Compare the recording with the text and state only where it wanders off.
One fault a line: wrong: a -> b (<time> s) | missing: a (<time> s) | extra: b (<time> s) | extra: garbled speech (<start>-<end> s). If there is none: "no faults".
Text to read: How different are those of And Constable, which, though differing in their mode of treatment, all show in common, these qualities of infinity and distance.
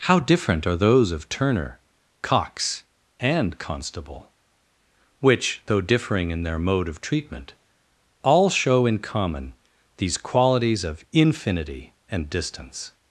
extra: Turner Cox (1.3 s)